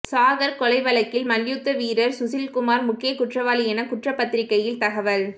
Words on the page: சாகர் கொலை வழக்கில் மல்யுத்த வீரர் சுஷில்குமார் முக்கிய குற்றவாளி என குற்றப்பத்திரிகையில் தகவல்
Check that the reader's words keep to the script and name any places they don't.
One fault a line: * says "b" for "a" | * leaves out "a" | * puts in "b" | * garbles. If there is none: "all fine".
all fine